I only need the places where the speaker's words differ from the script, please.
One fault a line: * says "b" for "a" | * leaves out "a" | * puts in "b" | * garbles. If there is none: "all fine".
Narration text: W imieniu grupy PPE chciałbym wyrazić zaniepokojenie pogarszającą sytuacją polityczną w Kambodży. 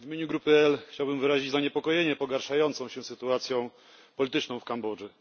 * puts in "się"